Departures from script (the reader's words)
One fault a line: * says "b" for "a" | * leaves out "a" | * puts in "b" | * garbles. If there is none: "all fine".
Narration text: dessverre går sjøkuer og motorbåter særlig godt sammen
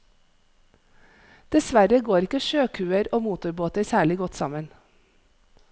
* puts in "ikke"